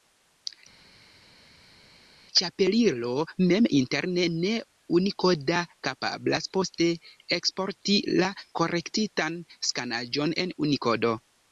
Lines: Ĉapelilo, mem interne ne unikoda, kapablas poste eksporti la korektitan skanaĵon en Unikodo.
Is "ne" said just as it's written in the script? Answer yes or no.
yes